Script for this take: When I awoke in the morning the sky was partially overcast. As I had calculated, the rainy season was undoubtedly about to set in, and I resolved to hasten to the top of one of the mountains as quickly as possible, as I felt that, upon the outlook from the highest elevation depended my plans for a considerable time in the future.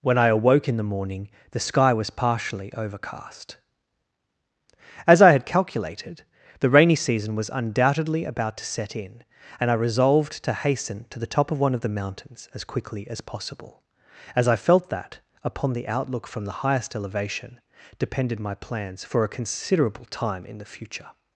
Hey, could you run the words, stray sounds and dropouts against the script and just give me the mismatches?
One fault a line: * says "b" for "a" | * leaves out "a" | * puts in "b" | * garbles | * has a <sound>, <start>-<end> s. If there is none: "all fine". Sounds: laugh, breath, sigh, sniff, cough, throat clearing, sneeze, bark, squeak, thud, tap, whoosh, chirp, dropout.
all fine